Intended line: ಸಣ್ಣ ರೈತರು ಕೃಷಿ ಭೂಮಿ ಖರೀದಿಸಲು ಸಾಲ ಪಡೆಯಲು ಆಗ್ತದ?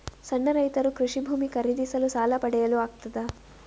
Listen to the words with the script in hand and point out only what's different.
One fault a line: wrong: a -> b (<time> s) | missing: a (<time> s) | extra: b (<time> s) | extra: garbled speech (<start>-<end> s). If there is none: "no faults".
no faults